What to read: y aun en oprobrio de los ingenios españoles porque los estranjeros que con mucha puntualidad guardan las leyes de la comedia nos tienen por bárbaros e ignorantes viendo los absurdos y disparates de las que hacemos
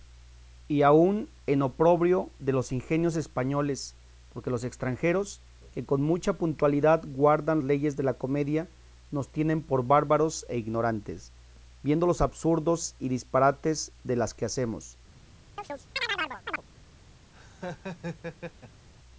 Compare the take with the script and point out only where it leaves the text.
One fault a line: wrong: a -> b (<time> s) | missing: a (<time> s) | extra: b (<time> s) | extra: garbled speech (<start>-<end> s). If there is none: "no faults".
missing: las (7.6 s)